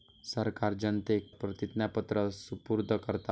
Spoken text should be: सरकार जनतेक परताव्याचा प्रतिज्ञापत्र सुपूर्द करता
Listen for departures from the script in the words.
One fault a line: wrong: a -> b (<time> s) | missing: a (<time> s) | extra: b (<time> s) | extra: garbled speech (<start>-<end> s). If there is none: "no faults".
missing: परताव्याचा (1.3 s)